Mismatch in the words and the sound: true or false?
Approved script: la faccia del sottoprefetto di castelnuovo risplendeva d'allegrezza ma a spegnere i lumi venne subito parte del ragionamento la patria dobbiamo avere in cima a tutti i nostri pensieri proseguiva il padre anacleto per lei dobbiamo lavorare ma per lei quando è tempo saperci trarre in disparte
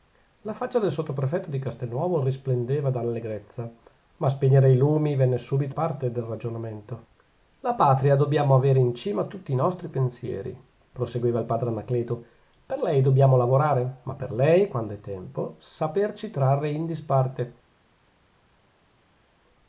false